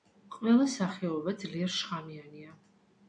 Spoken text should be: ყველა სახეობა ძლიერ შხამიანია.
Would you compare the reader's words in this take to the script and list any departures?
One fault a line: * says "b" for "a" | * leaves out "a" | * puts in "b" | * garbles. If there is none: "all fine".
all fine